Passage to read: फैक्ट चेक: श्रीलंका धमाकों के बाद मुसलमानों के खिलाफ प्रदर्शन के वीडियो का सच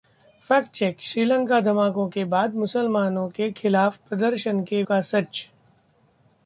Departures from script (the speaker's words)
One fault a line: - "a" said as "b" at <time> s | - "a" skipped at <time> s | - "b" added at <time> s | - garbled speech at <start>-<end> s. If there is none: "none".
- "वीडियो" skipped at 4.8 s